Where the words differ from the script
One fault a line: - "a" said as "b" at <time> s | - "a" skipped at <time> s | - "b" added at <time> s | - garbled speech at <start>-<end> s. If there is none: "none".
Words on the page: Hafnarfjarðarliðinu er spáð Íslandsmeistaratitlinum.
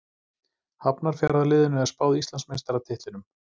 none